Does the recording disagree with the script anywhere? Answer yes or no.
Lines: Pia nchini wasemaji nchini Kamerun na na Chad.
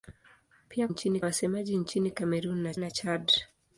no